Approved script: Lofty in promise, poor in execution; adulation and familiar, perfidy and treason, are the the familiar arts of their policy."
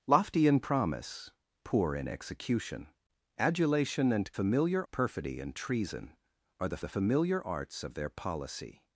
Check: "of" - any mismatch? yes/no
no